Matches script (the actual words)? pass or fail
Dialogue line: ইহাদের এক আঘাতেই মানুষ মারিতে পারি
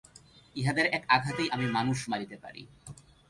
fail